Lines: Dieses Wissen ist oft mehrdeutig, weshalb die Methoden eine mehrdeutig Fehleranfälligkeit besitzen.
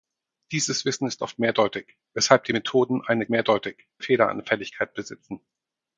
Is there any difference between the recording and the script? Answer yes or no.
no